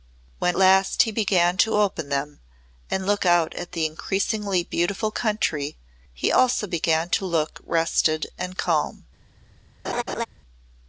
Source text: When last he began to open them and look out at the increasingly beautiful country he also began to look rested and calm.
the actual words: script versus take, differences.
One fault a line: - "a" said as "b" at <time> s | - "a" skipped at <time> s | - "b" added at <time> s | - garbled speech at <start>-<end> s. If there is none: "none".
none